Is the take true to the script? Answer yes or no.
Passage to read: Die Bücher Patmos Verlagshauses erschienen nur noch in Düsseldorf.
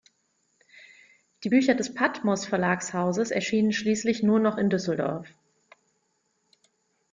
no